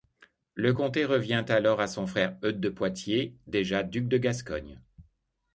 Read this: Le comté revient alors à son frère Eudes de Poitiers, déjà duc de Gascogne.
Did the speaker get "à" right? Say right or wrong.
right